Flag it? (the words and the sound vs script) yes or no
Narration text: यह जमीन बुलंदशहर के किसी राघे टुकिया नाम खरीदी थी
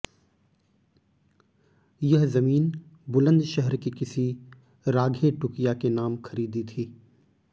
yes